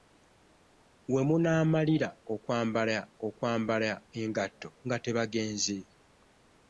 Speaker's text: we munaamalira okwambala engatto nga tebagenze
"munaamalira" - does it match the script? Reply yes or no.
yes